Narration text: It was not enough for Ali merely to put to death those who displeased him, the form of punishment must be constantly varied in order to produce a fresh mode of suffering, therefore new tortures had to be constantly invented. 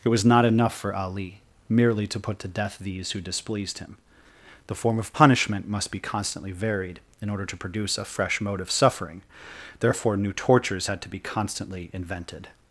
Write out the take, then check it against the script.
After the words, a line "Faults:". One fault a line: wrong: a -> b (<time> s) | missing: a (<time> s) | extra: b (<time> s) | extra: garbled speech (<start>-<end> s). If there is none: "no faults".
It was not enough for Ali merely to put to death these who displeased him, the form of punishment must be constantly varied in order to produce a fresh mode of suffering, therefore new tortures had to be constantly invented.
Faults:
wrong: those -> these (2.8 s)